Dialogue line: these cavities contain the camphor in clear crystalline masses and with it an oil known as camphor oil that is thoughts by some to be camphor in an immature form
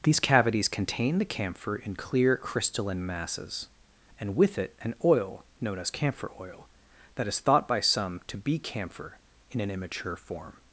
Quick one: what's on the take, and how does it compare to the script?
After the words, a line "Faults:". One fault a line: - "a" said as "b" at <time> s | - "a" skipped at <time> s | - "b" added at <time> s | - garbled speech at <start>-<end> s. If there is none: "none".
these cavities contain the camphor in clear crystalline masses and with it an oil known as camphor oil that is thought by some to be camphor in an immature form
Faults:
- "thoughts" said as "thought" at 7.4 s